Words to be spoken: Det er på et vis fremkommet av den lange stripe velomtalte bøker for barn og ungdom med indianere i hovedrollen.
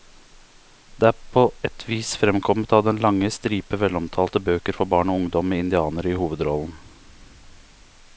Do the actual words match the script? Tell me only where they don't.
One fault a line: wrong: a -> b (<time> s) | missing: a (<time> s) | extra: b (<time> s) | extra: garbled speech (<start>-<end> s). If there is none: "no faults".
no faults